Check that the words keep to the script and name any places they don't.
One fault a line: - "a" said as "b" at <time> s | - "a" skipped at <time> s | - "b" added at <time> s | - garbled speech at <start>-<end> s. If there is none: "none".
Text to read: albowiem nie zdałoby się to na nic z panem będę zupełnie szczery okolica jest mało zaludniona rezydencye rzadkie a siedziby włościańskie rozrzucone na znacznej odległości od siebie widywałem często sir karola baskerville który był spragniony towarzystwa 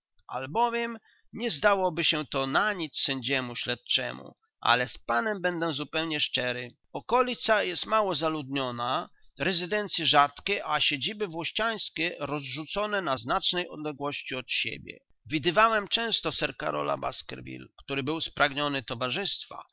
- "sędziemu śledczemu ale" added at 3.0 s